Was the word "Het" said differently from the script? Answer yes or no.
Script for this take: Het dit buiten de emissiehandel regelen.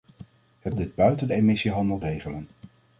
no